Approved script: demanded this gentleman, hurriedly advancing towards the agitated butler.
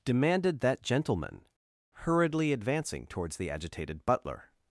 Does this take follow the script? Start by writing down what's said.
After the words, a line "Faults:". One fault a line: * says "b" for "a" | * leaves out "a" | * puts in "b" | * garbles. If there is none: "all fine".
demanded that gentleman, hurriedly advancing towards the agitated butler.
Faults:
* says "that" for "this"